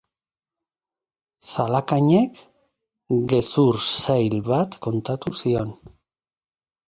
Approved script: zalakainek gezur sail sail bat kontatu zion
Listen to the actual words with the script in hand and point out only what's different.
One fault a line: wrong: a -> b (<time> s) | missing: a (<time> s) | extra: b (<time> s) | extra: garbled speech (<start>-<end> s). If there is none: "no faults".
missing: sail (4.3 s)